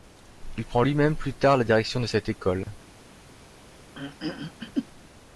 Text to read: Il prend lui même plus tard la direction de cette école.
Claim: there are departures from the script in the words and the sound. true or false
true